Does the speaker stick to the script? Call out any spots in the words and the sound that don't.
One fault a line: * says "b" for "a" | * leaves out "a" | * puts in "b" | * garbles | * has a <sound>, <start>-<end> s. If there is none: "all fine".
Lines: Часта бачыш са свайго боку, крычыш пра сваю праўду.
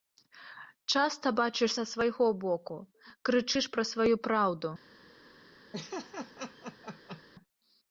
* has a laugh, 5.7-7.2 s